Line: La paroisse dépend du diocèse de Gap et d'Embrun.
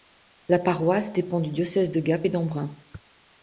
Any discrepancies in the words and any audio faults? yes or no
no